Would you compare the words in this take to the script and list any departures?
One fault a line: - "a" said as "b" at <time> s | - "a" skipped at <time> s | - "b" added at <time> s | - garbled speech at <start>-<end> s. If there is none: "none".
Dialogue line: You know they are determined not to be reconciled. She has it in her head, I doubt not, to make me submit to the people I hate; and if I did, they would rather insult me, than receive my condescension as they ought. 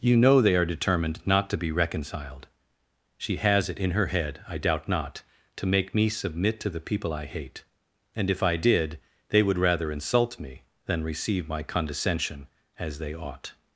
none